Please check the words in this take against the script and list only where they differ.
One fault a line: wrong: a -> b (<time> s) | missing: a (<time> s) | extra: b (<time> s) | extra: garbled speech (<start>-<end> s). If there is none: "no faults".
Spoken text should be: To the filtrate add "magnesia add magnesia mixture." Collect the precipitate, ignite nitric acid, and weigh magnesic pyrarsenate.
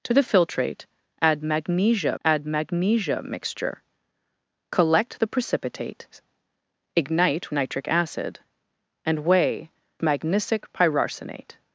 no faults